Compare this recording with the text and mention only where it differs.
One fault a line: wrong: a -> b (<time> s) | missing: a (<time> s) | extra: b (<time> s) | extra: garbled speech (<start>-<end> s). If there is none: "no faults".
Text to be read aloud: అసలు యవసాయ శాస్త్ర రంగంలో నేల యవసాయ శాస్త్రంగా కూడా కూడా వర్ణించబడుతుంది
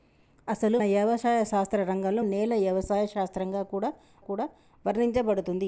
no faults